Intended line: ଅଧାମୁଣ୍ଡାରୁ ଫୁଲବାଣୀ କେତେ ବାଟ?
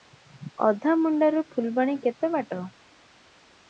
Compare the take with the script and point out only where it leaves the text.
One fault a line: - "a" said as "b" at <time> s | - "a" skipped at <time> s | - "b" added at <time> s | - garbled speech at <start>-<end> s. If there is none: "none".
none